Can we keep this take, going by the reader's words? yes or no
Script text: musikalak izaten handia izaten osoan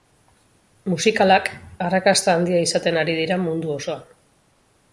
no